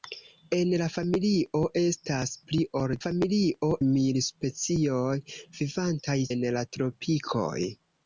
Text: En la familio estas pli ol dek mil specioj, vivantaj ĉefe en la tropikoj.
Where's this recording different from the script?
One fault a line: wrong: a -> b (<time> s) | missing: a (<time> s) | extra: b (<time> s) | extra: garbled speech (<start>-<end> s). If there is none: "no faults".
wrong: dek -> familio (3.0 s)
missing: ĉefe (6.2 s)